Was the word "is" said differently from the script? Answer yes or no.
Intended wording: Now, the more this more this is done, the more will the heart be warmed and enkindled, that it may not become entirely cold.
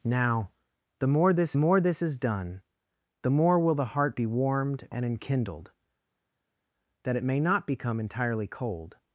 no